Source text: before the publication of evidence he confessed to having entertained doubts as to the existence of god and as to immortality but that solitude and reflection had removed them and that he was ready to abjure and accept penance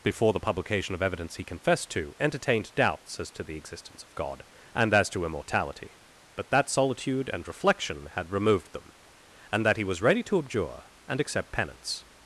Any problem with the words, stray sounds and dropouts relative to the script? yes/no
yes